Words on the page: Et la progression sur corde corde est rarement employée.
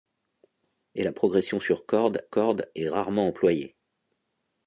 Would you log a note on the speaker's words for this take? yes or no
no